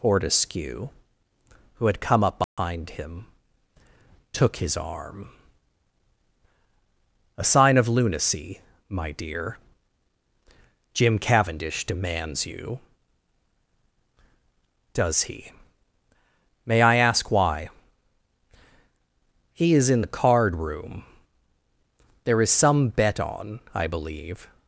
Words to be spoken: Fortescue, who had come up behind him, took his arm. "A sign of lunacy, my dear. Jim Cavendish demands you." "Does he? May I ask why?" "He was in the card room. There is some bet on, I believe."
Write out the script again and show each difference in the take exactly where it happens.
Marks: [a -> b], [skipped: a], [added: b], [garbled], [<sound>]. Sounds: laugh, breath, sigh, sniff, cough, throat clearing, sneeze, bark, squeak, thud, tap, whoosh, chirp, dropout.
Fortescue, who had come up behind [dropout] him, took his arm. "A sign of lunacy, my dear. Jim Cavendish demands you." "Does he? May I ask why?" "He [was -> is] in the card room. There is some bet on, I believe."